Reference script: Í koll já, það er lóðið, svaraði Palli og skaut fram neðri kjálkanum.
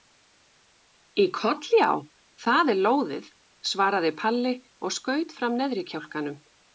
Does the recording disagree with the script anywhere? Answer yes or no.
no